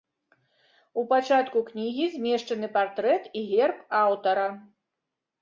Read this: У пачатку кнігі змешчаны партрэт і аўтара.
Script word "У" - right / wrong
right